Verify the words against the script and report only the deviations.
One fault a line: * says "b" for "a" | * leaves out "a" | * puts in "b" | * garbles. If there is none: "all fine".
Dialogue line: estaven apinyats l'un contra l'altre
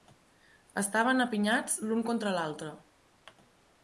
all fine